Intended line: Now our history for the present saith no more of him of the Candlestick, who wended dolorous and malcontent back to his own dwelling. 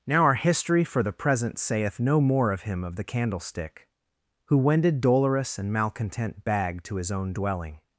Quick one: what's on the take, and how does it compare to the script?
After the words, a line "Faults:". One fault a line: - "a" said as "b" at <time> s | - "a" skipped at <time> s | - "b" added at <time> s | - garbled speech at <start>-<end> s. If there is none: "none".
Now our history for the present saith no more of him of the Candlestick, who wended dolorous and malcontent bag to his own dwelling.
Faults:
- "back" said as "bag" at 6.4 s